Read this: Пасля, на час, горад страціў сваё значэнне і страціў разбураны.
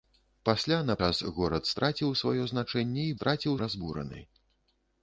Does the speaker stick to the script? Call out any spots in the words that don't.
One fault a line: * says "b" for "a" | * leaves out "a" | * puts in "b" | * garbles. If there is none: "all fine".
all fine